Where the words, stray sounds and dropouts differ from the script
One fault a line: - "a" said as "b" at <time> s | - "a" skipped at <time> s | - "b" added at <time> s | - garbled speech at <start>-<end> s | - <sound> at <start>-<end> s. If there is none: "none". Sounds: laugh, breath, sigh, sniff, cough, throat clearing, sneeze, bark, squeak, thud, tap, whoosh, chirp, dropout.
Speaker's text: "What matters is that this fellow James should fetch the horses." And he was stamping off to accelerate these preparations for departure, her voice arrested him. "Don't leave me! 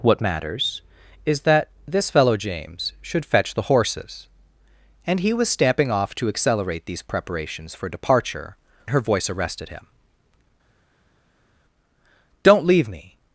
none